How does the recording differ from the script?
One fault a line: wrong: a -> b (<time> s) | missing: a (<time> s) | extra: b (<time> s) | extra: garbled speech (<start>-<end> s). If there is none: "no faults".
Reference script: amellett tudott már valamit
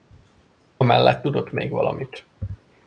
wrong: már -> még (1.5 s)